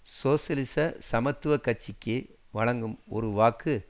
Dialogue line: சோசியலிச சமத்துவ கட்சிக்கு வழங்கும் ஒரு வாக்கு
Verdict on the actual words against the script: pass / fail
pass